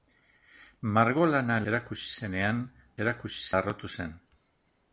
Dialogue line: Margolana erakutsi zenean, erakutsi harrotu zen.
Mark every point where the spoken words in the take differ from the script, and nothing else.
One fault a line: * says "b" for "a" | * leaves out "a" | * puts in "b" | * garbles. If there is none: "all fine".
all fine